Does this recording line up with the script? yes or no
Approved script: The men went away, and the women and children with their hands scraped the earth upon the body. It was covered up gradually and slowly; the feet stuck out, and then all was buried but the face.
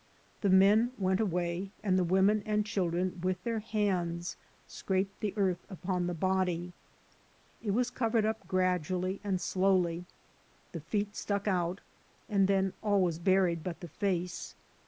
yes